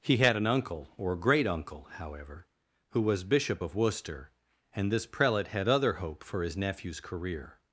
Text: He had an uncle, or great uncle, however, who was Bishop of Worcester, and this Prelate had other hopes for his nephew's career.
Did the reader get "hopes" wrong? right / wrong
wrong